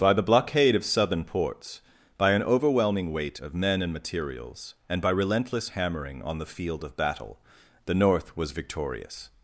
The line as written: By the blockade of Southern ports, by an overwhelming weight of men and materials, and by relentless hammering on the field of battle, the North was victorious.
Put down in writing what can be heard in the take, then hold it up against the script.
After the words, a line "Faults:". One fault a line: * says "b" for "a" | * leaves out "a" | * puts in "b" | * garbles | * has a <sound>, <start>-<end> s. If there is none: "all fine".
By the blockade of Southern ports, by an overwhelming weight of men and materials, and by relentless hammering on the field of battle, the North was victorious.
Faults:
all fine